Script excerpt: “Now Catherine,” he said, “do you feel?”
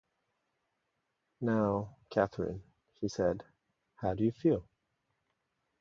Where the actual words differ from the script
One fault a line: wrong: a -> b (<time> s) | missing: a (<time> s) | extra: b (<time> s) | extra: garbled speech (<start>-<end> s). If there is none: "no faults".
extra: how (4.0 s)